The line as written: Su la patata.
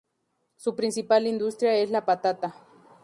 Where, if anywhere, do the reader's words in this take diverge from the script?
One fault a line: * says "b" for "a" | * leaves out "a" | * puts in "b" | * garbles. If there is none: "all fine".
* puts in "principal industria es"